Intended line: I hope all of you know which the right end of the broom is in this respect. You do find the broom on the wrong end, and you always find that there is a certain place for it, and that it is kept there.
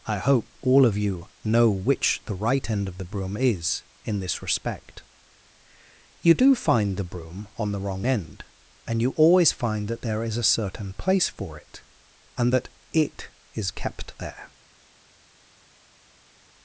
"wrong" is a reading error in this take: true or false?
false